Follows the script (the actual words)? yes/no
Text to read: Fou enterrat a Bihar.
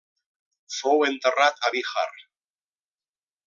yes